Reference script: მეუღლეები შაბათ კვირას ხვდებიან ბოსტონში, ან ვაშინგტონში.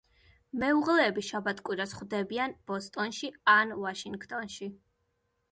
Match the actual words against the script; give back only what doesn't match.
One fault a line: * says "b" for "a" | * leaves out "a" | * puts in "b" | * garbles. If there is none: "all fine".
all fine